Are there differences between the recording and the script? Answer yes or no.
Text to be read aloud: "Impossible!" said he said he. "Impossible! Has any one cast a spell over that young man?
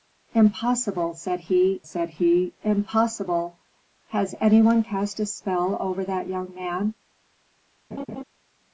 no